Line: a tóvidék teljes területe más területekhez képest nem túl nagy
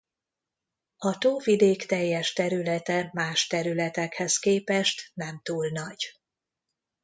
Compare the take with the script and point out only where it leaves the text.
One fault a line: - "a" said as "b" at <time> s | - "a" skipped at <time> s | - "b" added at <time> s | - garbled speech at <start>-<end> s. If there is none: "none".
none